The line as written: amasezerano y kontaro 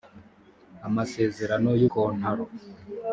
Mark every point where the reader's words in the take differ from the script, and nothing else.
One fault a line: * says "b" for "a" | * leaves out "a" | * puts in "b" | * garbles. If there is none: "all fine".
all fine